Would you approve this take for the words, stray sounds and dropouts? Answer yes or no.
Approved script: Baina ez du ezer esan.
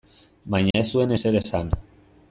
no